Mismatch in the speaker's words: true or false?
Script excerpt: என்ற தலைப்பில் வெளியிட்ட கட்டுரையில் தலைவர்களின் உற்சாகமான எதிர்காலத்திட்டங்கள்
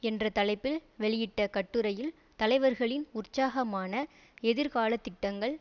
false